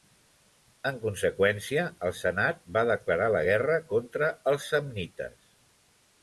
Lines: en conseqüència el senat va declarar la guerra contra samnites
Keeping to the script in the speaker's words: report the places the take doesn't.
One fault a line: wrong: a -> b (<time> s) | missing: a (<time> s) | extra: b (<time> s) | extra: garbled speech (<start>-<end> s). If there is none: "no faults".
extra: els (4.5 s)